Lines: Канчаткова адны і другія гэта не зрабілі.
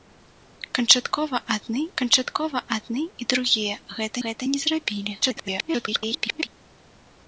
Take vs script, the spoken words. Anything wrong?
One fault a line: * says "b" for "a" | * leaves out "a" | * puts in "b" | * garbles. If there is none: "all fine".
* puts in "канчаткова адны"
* puts in "гэта"
* garbles